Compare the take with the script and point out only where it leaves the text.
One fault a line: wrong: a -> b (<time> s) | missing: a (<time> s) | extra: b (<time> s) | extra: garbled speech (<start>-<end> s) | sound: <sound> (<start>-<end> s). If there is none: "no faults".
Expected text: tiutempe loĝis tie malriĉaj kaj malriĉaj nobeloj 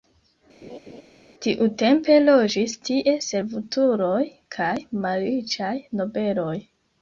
sound: laugh (0.6-1.0 s)
wrong: malriĉaj -> servutuloj (3.3 s)